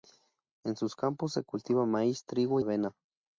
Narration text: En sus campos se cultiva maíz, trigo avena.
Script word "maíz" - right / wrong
right